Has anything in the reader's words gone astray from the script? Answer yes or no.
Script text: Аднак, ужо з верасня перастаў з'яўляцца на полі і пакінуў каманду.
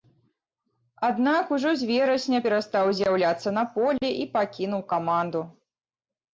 no